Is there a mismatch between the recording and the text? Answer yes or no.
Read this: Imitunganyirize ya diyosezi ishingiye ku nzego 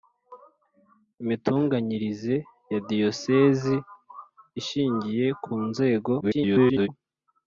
yes